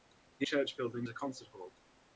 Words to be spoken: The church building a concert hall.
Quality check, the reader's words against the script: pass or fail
pass